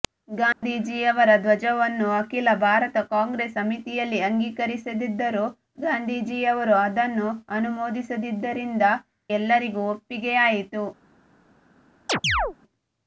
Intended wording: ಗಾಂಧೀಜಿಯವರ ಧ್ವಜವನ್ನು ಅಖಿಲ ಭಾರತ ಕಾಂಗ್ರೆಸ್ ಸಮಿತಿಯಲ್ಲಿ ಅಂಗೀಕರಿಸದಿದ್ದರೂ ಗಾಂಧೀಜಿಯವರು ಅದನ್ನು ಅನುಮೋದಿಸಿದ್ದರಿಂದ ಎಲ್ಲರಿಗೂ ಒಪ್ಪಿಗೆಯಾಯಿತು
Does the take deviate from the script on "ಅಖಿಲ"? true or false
false